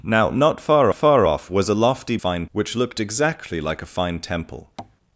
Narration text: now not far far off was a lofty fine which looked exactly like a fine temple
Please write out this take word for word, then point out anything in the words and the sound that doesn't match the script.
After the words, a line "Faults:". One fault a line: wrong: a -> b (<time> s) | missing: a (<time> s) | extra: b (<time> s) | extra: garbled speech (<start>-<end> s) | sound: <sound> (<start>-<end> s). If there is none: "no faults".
now not far far off was a lofty fine which looked exactly like a fine temple
Faults:
sound: tap (4.8-5.0 s)